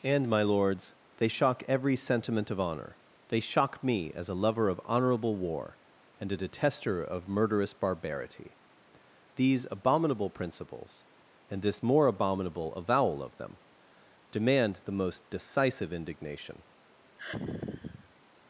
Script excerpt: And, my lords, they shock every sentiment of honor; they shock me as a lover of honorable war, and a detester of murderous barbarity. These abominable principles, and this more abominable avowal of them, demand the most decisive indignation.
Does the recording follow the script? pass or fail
pass